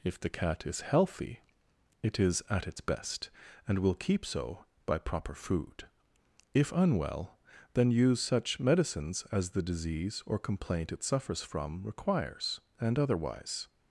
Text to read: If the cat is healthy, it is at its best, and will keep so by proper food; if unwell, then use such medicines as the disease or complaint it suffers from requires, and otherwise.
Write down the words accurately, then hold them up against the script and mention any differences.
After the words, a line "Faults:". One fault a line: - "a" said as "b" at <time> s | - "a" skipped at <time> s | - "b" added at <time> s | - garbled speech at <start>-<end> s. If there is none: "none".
If the cat is healthy, it is at its best, and will keep so by proper food; if unwell, then use such medicines as the disease or complaint it suffers from requires, and otherwise.
Faults:
none